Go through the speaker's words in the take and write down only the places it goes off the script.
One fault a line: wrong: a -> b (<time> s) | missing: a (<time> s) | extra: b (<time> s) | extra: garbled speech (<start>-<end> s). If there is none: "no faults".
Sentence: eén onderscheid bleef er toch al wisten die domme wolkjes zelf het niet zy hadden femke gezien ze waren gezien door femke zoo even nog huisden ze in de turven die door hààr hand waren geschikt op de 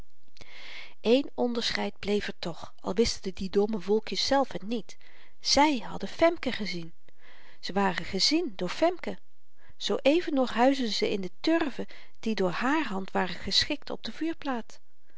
no faults